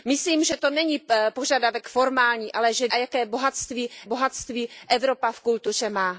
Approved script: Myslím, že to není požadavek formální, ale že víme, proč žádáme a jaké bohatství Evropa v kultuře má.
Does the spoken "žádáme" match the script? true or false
false